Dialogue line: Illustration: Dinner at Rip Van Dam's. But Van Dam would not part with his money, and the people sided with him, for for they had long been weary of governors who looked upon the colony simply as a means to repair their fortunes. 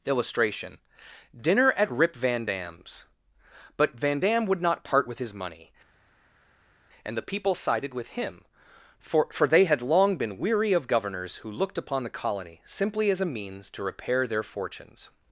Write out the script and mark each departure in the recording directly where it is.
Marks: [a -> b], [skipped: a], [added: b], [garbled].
Illustration: Dinner at Rip Van Dam's. But Van Dam would not part with his money, and the people sided with him, for for they had long been weary of governors who looked upon the colony simply as a means to repair their fortunes.